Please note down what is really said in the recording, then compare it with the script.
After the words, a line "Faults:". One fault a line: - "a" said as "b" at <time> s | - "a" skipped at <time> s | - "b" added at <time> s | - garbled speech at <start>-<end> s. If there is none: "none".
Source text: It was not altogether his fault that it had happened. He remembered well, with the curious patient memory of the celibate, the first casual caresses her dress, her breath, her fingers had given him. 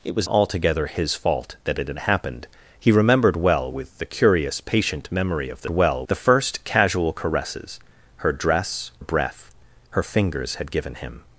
It was altogether his fault that it had happened. He remembered well, with the curious patient memory of the well, the first casual caresses her dress, breath, her fingers had given him.
Faults:
- "not" skipped at 0.3 s
- "celibate" said as "well" at 5.7 s
- "her" skipped at 8.9 s